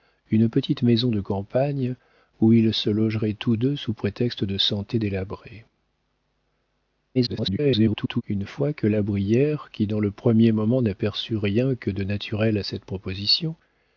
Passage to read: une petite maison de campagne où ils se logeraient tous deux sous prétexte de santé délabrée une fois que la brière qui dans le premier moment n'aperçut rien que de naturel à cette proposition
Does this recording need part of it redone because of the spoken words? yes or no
yes